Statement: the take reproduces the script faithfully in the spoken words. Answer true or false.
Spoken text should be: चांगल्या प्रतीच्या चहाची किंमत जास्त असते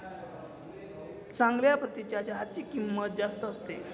true